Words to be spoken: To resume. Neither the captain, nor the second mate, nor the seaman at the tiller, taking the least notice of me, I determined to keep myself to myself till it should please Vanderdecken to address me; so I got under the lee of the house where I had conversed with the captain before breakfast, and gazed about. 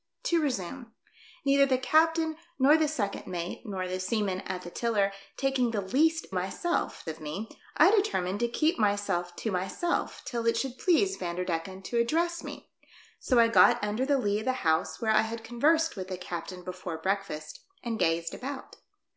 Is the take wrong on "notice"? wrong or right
wrong